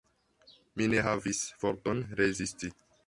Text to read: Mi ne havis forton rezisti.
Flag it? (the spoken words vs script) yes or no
no